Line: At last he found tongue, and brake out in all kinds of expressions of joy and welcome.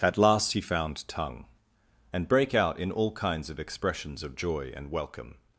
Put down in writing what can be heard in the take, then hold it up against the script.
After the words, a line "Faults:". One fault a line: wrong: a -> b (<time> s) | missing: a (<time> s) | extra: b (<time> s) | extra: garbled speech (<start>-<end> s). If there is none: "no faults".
At last he found tongue, and brake out in all kinds of expressions of joy and welcome.
Faults:
no faults